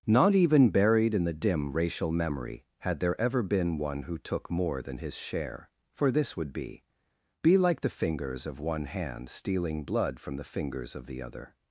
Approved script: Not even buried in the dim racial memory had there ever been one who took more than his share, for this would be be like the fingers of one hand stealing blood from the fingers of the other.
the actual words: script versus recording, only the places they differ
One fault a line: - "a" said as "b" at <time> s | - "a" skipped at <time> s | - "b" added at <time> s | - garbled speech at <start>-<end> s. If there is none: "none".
none